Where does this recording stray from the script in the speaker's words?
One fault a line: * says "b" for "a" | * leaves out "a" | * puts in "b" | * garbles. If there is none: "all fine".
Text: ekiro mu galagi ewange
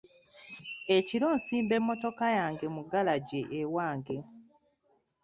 * puts in "nsimba emmotoka yange"